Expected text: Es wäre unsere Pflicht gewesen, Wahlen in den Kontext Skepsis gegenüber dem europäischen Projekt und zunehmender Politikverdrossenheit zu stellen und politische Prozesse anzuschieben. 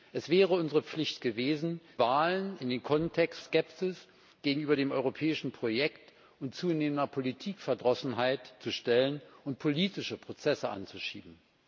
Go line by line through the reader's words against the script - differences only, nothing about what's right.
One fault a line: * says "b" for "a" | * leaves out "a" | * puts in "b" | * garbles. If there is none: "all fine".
all fine